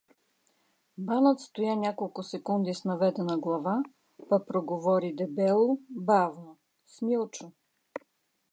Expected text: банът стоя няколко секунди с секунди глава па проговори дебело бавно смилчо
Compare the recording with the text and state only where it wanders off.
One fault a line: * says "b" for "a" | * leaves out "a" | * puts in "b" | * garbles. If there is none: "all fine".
* says "наведена" for "секунди"